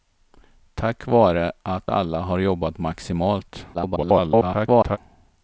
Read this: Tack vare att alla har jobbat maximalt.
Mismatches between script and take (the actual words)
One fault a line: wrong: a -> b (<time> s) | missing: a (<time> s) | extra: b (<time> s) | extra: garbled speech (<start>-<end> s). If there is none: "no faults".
extra: garbled speech (3.7-5.0 s)